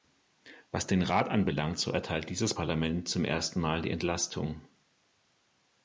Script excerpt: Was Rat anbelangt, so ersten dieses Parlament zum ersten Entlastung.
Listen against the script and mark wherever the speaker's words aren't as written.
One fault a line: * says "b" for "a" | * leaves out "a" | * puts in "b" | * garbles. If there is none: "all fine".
* puts in "den"
* says "erteilt" for "ersten"
* puts in "Mal die"